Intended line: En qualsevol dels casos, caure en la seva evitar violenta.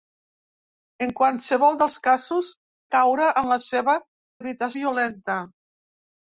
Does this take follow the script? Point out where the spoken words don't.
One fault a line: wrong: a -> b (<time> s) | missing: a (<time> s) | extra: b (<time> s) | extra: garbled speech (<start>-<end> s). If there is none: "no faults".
no faults